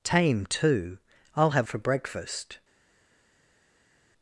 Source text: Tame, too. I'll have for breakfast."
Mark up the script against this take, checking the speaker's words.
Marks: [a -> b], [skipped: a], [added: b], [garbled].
Tame, too. I'll have for breakfast."